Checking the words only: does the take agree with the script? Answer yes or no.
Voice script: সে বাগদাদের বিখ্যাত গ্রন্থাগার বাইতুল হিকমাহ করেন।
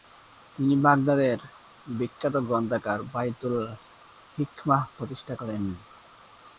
no